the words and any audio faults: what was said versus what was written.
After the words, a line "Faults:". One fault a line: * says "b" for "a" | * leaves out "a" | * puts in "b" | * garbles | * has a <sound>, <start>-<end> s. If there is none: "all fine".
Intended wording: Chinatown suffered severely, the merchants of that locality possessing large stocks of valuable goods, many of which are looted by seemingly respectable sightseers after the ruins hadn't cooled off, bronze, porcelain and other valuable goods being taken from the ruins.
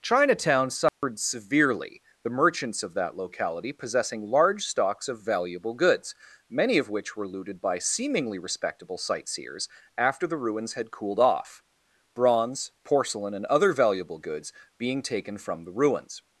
Chinatown suffered severely, the merchants of that locality possessing large stocks of valuable goods, many of which were looted by seemingly respectable sightseers after the ruins had cooled off, bronze, porcelain and other valuable goods being taken from the ruins.
Faults:
* has a dropout, 0.9-1.0 s
* says "were" for "are"
* says "had" for "hadn't"